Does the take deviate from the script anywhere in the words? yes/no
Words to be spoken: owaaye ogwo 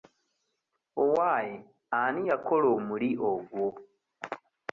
yes